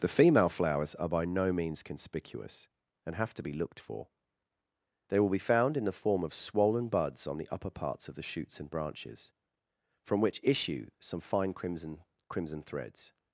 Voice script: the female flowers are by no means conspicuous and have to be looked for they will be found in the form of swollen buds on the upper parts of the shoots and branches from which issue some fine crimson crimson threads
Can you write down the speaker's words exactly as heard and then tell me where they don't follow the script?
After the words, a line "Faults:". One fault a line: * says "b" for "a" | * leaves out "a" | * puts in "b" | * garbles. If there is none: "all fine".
the female flowers are by no means conspicuous and have to be looked for they will be found in the form of swollen buds on the upper parts of the shoots and branches from which issue some fine crimson crimson threads
Faults:
all fine